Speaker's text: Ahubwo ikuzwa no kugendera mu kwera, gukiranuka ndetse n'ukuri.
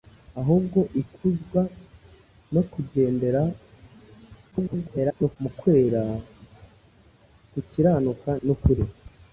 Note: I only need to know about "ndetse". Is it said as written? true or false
false